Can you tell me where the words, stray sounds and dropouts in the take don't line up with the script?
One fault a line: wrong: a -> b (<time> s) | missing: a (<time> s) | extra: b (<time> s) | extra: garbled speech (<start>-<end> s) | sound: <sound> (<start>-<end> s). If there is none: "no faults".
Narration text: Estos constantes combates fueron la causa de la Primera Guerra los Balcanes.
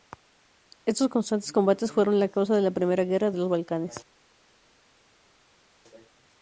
extra: de (3.3 s)